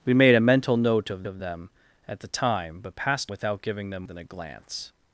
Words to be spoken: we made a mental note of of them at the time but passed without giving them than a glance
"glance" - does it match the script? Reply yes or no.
yes